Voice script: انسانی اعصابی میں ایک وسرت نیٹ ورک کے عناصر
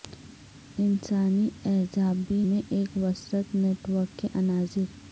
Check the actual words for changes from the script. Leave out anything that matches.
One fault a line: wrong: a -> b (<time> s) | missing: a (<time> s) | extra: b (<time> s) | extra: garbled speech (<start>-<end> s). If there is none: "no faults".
no faults